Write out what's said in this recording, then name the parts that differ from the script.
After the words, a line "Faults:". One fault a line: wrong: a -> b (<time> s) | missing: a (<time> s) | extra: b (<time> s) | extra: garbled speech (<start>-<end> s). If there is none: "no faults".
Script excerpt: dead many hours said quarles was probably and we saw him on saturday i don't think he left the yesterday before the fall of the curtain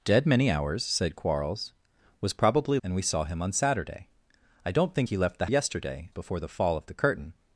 dead many hours said quarles was probably and we saw him on saturday i don't think he left the yesterday before the fall of the curtain
Faults:
no faults